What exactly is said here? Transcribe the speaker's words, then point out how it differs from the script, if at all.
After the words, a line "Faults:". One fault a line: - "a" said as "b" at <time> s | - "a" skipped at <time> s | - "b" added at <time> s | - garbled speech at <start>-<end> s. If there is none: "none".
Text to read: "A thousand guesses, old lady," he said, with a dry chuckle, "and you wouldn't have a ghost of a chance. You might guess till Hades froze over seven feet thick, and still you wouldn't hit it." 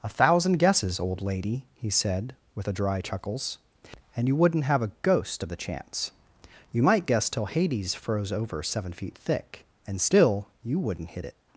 "A thousand guesses, old lady," he said, with a dry chuckles, "and you wouldn't have a ghost of the chance. You might guess till Hades froze over seven feet thick, and still you wouldn't hit it."
Faults:
- "chuckle" said as "chuckles" at 3.0 s
- "a" said as "the" at 5.5 s